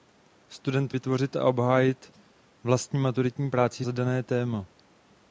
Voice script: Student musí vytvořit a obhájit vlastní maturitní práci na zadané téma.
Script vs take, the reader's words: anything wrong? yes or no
yes